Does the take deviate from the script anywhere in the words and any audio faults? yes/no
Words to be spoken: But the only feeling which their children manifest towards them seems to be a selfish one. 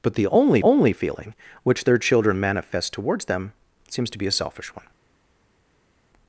yes